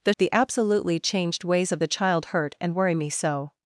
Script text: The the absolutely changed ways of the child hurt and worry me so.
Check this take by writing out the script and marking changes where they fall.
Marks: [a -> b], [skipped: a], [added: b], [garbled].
The the absolutely changed ways of the child hurt and worry me so.